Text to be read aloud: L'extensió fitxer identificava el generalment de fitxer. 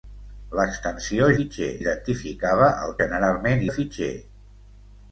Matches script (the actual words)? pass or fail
pass